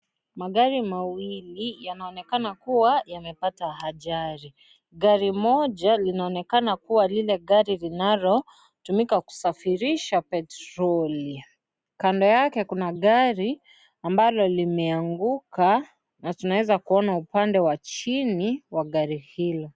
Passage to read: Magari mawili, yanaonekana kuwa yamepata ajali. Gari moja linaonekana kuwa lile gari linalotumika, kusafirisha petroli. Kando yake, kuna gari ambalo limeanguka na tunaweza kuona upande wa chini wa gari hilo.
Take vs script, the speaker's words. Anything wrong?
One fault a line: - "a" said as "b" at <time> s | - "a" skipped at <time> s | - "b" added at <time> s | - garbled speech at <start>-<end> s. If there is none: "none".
none